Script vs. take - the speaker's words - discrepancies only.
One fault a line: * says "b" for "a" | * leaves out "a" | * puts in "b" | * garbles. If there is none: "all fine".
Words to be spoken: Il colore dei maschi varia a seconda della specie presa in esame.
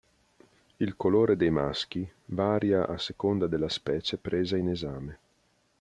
all fine